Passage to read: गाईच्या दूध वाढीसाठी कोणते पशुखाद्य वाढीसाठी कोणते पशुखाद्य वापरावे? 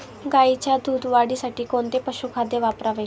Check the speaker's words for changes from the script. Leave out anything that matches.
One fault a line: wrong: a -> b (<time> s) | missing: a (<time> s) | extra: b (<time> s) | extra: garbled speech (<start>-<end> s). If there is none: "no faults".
missing: वाढीसाठी कोणते पशुखाद्य (2.6 s)